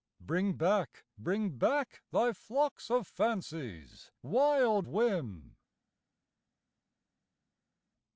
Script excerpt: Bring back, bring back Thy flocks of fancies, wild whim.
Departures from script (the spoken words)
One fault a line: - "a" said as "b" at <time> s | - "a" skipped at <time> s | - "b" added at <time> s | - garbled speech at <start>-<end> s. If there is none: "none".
none